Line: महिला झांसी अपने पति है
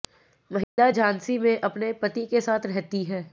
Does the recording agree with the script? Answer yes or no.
no